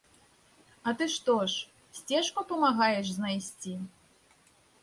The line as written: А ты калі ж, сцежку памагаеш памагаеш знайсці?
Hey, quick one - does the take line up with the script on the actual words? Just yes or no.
no